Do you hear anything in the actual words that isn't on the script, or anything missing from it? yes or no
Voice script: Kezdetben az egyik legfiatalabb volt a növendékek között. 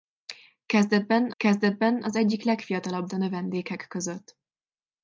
yes